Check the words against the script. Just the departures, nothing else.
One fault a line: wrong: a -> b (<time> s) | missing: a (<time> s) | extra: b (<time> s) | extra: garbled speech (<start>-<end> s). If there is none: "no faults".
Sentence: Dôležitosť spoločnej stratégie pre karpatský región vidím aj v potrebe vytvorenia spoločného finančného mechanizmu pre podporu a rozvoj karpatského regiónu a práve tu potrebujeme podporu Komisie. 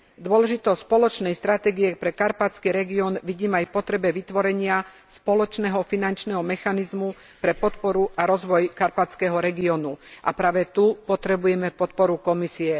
no faults